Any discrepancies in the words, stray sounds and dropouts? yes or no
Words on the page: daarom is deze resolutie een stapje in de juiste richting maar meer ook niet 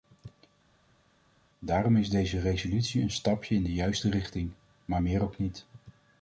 no